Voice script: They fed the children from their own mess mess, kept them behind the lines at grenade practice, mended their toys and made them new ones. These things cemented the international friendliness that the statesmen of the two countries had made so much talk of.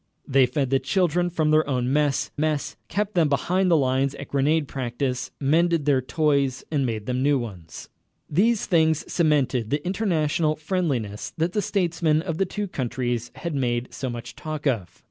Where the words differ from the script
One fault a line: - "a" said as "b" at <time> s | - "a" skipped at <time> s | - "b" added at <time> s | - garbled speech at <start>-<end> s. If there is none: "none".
none